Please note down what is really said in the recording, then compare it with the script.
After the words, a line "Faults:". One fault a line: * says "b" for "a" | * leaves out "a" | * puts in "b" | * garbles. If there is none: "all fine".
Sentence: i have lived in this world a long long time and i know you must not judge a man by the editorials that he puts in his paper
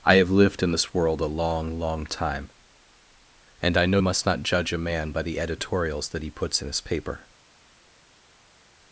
i have lived in this world a long long time and i know must not judge a man by the editorials that he puts in his paper
Faults:
* leaves out "you"